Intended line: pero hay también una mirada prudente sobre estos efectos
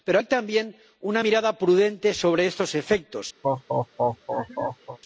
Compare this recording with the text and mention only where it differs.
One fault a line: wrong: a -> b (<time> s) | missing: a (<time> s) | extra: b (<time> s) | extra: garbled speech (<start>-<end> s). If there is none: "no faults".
no faults